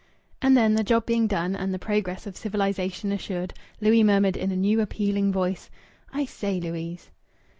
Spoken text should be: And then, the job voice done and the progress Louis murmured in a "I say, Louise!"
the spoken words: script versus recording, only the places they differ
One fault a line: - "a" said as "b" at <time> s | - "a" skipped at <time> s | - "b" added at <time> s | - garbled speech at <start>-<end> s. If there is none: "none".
- "voice" said as "being" at 1.1 s
- "of civilization assured" added at 2.2 s
- "new appealing voice" added at 4.5 s